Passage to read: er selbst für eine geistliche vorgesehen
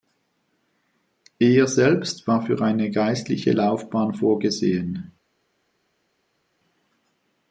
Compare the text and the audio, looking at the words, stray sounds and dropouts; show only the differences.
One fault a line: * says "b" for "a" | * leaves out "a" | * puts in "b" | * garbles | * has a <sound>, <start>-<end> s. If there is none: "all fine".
* puts in "war"
* puts in "laufbahn"